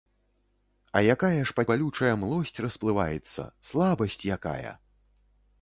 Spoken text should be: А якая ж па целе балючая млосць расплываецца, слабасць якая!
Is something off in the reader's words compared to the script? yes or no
yes